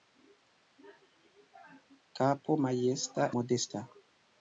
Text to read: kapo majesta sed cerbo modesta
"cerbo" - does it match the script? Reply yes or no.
no